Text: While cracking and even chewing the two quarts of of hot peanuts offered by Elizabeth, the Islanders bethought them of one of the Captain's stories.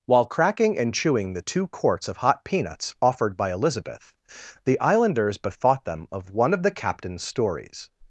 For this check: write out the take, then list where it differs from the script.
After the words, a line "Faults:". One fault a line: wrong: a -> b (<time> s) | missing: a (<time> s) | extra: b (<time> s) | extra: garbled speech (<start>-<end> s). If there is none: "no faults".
While cracking and chewing the two quarts of hot peanuts offered by Elizabeth, the Islanders bethought them of one of the Captain's stories.
Faults:
missing: even (0.9 s)
missing: of (2.2 s)